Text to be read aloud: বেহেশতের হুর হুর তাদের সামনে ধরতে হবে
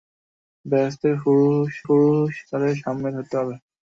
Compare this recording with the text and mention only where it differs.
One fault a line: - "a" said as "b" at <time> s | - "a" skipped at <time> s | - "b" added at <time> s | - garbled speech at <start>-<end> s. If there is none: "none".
none